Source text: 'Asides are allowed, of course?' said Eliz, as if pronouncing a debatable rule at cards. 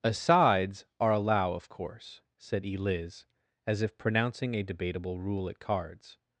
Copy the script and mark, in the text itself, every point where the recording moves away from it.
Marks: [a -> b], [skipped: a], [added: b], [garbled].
'Asides are [allowed, -> allow] of course?' said Eliz, as if pronouncing a debatable rule at cards.